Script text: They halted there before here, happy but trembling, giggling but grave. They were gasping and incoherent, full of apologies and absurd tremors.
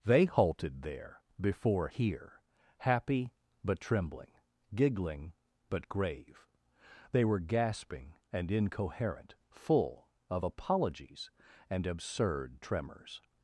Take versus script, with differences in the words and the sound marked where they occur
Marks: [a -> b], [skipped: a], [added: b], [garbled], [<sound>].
They halted there before here, happy but trembling, giggling but grave. They were gasping and incoherent, full of apologies and absurd tremors.